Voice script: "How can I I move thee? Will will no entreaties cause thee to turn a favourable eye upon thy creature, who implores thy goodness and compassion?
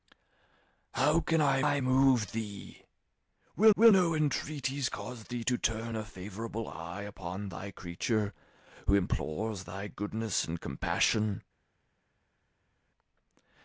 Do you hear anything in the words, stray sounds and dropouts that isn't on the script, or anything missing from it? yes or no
no